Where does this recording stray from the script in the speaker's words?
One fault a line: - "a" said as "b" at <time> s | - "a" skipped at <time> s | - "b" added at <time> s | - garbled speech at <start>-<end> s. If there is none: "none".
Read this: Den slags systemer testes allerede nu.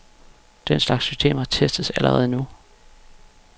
none